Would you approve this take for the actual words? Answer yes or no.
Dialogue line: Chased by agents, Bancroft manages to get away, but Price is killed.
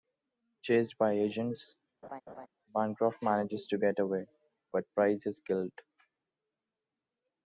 yes